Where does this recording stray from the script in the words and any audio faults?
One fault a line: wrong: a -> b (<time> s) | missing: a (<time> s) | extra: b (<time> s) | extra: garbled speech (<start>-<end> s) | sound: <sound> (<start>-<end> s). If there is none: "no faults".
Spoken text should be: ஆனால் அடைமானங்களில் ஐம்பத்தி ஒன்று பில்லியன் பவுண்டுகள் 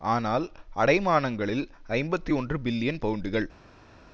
no faults